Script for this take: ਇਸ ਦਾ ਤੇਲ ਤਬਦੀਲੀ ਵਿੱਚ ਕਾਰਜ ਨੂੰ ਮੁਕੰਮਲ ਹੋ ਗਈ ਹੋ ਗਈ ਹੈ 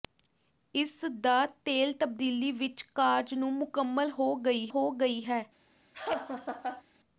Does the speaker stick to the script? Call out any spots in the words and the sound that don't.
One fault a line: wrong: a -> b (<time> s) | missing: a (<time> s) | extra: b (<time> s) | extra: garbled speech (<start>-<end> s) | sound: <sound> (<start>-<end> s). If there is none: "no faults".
sound: laugh (5.9-6.8 s)